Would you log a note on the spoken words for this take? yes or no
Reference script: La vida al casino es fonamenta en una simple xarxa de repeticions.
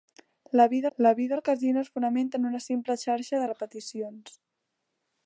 yes